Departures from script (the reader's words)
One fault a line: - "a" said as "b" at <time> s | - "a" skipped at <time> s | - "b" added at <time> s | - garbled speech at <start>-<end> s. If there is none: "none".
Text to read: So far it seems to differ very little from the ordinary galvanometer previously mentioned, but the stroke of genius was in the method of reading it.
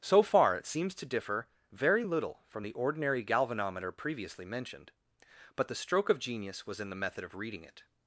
none